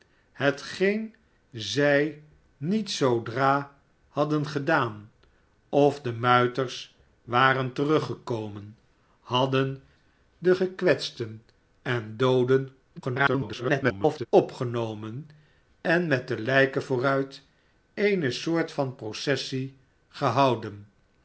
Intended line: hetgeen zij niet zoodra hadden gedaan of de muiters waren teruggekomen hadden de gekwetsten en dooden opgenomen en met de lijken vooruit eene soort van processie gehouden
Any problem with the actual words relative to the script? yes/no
yes